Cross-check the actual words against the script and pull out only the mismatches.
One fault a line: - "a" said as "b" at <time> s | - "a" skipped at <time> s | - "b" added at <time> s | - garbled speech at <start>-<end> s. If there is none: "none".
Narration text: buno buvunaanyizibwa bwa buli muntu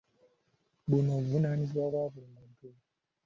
none